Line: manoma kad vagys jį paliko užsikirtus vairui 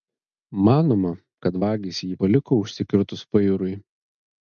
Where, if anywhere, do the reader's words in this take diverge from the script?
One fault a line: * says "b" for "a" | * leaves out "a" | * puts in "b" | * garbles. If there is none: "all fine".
all fine